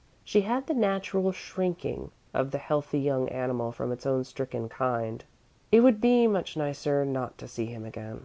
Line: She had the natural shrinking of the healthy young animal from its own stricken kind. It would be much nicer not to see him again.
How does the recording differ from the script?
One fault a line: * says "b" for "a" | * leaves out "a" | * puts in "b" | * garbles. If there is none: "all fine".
all fine